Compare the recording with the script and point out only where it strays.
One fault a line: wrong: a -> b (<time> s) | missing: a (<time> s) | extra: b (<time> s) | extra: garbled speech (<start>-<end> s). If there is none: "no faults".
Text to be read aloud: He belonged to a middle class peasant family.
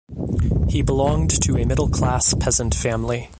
no faults